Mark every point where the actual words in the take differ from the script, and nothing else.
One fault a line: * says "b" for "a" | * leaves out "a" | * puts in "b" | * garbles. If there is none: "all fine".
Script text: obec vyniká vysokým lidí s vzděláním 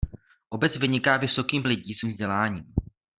all fine